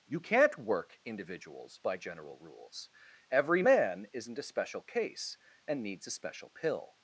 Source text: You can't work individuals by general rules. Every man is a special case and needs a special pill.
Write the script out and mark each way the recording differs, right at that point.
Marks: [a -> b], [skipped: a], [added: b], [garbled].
You can't work individuals by general rules. Every man [is -> isn't] a special case and needs a special pill.